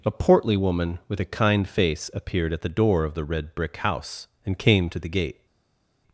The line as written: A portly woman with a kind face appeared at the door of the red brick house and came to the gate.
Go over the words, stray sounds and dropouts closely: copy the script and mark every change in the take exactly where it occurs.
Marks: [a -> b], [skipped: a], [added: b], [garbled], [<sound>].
A portly woman with a kind face appeared at the door of the red brick house and came to the gate.